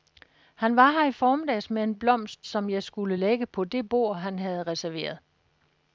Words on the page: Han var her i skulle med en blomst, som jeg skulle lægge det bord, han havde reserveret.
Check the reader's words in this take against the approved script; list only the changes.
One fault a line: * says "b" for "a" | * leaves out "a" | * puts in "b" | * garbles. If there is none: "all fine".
* says "formiddags" for "skulle"
* puts in "på"